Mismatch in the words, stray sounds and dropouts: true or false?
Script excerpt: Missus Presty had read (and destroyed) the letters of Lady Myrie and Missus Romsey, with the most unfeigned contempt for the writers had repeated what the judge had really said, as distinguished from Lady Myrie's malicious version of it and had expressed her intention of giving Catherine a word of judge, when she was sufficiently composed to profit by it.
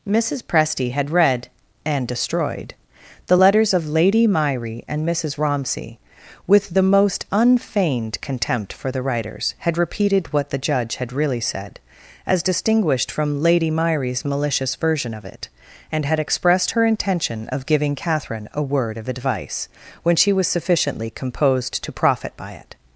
true